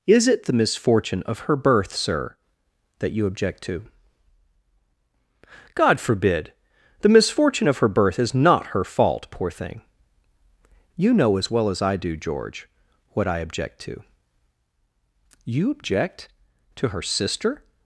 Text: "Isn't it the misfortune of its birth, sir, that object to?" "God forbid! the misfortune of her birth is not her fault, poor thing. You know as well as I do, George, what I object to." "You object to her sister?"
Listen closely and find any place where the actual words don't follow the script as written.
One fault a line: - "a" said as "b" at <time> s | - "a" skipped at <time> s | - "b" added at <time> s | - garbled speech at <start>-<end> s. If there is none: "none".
- "Isn't" said as "Is" at 0.1 s
- "its" said as "her" at 1.4 s
- "you" added at 3.1 s